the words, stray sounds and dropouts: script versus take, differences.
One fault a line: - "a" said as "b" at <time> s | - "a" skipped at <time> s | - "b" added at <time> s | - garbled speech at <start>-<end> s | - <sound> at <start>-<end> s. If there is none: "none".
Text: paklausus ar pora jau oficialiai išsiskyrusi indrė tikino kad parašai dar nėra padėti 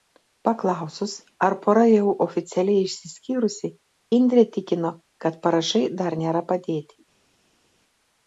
none